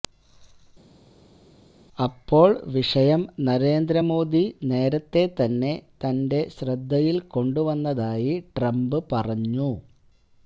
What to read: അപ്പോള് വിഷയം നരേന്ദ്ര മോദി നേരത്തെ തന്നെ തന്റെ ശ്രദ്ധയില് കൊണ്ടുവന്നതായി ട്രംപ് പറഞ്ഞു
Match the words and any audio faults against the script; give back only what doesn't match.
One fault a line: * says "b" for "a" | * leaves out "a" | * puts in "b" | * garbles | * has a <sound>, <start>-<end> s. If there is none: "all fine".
all fine